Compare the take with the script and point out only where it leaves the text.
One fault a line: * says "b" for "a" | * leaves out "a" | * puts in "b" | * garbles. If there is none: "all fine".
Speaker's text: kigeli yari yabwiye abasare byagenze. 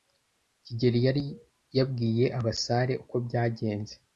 * puts in "uko"